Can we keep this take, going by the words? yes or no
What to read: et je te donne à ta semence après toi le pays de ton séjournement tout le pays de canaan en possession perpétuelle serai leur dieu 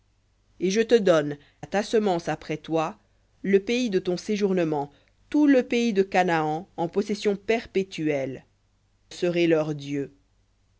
yes